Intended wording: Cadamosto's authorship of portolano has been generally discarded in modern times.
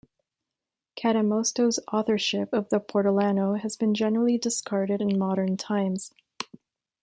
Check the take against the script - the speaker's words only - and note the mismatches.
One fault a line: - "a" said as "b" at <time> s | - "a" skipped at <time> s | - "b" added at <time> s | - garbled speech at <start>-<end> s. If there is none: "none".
- "the" added at 2.7 s